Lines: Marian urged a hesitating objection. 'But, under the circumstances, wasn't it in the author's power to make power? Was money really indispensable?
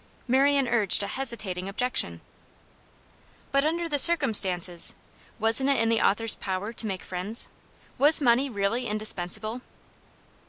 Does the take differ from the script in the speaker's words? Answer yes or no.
yes